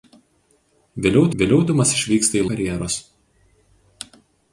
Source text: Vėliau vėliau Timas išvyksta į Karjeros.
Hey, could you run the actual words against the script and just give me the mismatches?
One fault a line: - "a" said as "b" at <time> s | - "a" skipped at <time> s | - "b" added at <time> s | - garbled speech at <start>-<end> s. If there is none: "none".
none